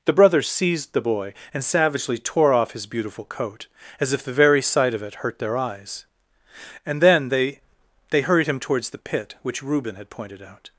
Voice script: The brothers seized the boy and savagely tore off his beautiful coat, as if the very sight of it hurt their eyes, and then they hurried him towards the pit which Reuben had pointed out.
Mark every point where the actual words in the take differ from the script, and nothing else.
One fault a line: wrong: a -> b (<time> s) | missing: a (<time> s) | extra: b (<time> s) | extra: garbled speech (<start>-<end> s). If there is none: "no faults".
extra: they (8.1 s)